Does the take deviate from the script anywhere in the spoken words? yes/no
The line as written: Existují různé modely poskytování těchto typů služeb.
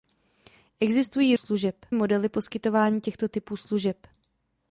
yes